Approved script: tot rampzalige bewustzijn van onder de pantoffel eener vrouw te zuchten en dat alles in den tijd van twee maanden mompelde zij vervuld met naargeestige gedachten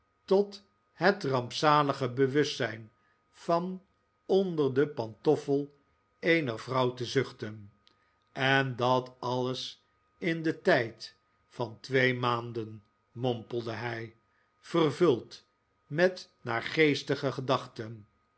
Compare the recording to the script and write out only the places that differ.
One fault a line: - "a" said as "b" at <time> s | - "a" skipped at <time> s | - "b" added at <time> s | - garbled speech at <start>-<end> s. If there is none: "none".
- "het" added at 0.9 s
- "zij" said as "hij" at 13.7 s